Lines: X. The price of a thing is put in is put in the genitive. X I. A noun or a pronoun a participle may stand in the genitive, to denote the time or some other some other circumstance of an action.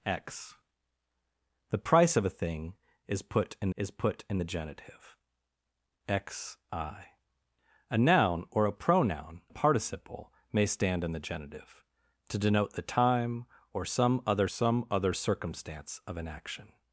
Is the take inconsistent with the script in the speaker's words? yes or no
no